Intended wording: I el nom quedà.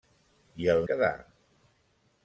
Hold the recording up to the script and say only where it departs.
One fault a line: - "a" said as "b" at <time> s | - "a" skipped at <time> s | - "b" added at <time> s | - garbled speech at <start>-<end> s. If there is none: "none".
- "nom" skipped at 0.8 s